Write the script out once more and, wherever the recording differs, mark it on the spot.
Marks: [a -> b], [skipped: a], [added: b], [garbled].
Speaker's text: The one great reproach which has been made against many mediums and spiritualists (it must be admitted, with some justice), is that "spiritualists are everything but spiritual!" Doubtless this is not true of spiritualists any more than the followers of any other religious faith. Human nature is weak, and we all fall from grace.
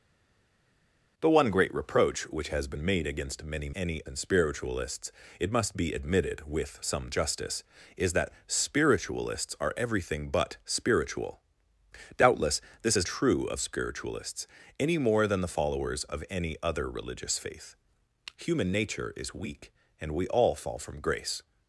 The one great reproach which has been made against many [mediums -> any] and spiritualists (it must be admitted, with some justice), is that "spiritualists are everything but spiritual!" Doubtless this is [skipped: not] true of spiritualists any more than the followers of any other religious faith. Human nature is weak, and we all fall from grace.